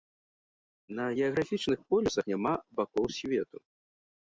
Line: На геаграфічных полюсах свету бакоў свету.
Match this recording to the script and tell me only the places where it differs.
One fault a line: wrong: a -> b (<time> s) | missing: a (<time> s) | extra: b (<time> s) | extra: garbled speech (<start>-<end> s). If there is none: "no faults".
wrong: свету -> няма (2.3 s)